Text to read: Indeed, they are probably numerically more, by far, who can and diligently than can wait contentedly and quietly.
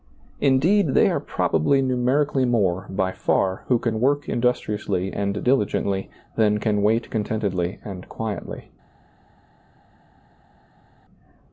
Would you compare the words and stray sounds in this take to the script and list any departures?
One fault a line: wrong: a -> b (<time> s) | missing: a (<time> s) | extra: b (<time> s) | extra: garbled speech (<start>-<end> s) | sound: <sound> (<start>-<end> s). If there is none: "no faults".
extra: work industriously (4.0 s)